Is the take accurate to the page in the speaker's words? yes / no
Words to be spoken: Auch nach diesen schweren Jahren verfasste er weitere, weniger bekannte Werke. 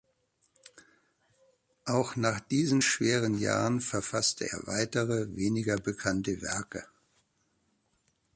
yes